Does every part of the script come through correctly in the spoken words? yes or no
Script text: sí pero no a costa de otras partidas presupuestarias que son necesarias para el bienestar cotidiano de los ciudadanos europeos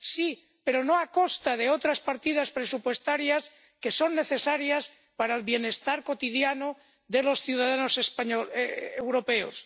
yes